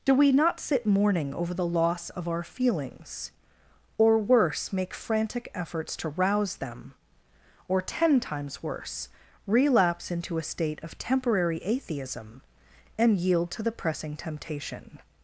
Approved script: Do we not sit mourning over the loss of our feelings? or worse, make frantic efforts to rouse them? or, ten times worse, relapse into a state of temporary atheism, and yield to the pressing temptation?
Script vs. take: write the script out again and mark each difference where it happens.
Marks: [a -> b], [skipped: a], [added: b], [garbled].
Do we not sit mourning over the loss of our feelings? or worse, make frantic efforts to rouse them? or, ten times worse, relapse into a state of temporary atheism, and yield to the pressing temptation?